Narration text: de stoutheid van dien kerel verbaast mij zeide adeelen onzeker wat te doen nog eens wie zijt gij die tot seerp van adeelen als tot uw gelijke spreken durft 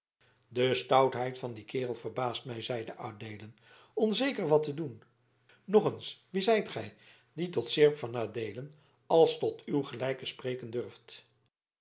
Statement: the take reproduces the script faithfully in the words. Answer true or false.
true